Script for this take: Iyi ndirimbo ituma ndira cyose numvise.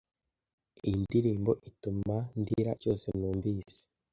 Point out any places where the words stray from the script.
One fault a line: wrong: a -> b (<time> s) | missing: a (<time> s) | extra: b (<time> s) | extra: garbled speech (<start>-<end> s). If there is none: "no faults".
no faults